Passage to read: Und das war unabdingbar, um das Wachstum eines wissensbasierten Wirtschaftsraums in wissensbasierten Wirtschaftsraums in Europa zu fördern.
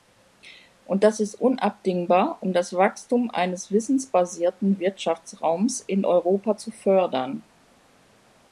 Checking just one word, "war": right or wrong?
wrong